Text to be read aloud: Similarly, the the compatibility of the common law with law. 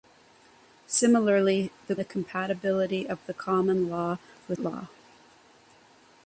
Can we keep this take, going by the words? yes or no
yes